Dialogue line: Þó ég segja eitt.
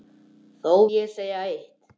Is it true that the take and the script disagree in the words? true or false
false